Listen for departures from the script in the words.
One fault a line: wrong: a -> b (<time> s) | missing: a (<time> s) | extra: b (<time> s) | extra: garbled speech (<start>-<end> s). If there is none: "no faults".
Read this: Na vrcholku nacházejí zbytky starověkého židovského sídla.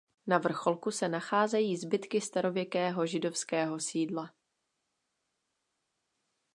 extra: se (0.9 s)